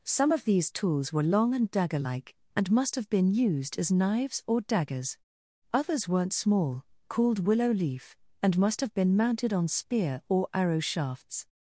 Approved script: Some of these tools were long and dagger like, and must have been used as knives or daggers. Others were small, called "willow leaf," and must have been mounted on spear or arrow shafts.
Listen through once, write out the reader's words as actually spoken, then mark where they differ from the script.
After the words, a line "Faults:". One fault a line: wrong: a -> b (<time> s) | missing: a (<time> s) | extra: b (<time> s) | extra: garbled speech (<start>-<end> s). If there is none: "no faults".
Some of these tools were long and dagger like, and must have been used as knives or daggers. Others weren't small, called "willow leaf," and must have been mounted on spear or arrow shafts.
Faults:
wrong: were -> weren't (6.1 s)